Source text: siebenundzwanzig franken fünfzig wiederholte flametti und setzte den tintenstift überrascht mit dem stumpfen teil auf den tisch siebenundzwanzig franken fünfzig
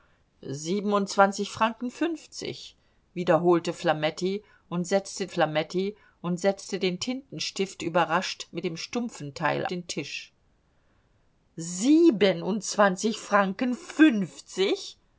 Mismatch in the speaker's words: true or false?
true